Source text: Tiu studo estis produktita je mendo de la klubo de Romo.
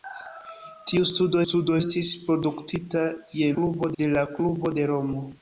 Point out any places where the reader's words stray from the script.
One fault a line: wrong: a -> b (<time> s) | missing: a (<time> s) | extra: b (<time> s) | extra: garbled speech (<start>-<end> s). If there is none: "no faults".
extra: studo (1.4 s)
wrong: mendo -> klubo (3.6 s)